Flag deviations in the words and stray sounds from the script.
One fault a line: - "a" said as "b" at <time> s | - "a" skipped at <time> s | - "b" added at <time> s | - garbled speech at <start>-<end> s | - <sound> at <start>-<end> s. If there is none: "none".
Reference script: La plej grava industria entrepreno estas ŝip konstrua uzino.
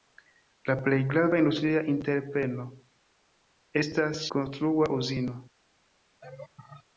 - "ŝip" skipped at 4.3 s
- laugh at 6.2-6.8 s